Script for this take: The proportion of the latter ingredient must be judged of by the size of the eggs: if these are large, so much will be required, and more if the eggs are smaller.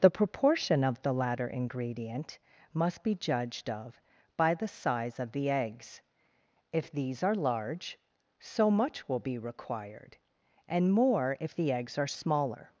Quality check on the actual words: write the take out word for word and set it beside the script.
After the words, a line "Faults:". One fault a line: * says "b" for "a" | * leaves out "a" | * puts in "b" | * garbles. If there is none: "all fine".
The proportion of the latter ingredient must be judged of by the size of the eggs: if these are large, so much will be required, and more if the eggs are smaller.
Faults:
all fine